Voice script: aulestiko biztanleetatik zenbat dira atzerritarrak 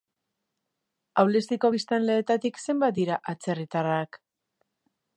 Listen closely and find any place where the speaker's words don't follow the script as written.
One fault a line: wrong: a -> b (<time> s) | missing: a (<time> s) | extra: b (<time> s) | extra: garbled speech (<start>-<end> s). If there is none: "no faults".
no faults